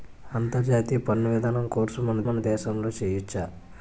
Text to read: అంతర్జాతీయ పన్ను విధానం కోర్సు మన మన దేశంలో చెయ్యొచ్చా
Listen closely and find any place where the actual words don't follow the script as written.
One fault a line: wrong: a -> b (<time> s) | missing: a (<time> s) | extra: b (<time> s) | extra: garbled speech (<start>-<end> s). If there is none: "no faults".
no faults